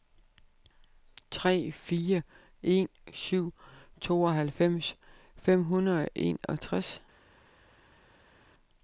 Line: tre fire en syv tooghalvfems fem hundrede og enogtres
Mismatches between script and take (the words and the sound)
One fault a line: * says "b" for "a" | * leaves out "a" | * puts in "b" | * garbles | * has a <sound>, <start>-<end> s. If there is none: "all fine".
all fine